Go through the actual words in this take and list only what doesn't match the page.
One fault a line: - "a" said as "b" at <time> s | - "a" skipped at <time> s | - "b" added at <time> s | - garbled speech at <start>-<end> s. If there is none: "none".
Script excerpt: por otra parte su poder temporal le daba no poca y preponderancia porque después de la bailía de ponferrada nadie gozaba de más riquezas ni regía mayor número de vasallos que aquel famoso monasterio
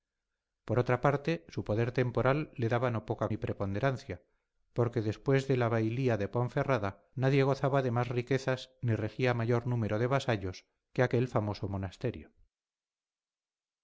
none